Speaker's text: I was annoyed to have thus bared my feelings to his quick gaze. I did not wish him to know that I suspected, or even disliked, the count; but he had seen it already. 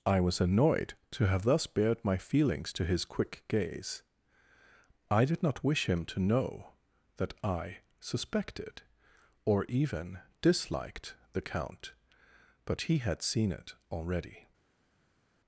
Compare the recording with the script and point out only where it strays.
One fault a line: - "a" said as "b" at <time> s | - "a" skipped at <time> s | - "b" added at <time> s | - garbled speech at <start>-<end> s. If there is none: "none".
none